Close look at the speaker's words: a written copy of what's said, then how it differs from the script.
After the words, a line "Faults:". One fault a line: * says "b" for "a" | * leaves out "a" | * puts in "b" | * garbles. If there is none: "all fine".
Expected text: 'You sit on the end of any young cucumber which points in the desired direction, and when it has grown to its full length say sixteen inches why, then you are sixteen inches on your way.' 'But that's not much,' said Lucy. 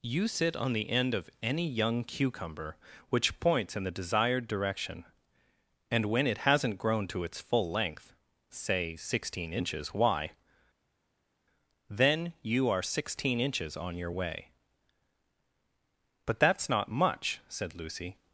'You sit on the end of any young cucumber which points in the desired direction, and when it hasn't grown to its full length say sixteen inches why, then you are sixteen inches on your way.' 'But that's not much,' said Lucy.
Faults:
* says "hasn't" for "has"